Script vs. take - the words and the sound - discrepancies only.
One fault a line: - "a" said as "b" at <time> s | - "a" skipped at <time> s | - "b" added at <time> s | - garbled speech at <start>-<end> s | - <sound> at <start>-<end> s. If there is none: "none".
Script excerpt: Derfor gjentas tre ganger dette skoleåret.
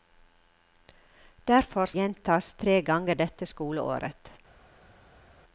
none